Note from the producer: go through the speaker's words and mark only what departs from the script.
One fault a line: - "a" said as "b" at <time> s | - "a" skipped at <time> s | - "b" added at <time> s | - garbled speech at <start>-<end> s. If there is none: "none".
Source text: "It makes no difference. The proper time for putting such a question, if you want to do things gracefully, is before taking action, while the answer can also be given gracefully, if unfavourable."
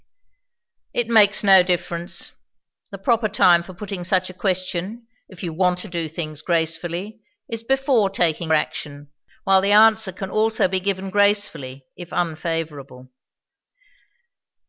none